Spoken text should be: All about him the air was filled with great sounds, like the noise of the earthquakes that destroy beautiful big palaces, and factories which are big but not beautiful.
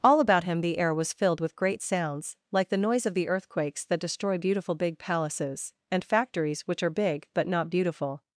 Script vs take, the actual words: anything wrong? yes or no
no